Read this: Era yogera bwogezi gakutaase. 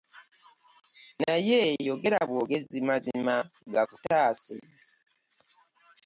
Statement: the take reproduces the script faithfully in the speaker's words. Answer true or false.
false